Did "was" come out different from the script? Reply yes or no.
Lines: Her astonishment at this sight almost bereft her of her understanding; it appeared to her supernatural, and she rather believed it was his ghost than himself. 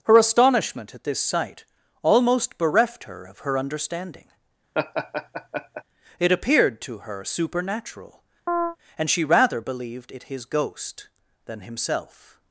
yes